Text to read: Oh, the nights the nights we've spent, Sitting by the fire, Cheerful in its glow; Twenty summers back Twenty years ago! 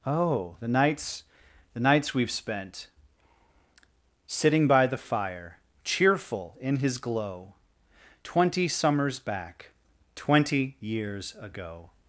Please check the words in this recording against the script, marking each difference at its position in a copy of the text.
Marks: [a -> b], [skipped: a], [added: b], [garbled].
Oh, the nights the nights we've spent, Sitting by the fire, Cheerful in [its -> his] glow; Twenty summers back Twenty years ago!